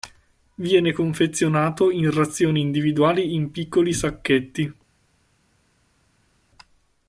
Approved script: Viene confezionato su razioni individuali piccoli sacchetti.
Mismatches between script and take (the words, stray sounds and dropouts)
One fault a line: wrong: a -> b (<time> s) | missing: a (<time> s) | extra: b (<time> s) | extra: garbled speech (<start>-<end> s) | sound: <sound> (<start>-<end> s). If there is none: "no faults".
wrong: su -> in (1.9 s)
extra: in (3.4 s)